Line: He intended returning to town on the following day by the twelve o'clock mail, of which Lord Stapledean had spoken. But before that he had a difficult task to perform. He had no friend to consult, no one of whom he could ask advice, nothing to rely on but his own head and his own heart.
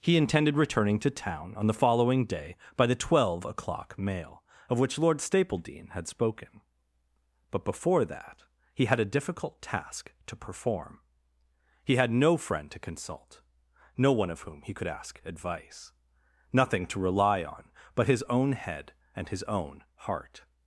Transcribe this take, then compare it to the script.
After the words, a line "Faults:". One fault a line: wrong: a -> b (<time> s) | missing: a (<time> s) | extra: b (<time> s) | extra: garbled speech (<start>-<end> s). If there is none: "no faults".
He intended returning to town on the following day by the twelve o'clock mail, of which Lord Stapledean had spoken. But before that he had a difficult task to perform. He had no friend to consult, no one of whom he could ask advice, nothing to rely on but his own head and his own heart.
Faults:
no faults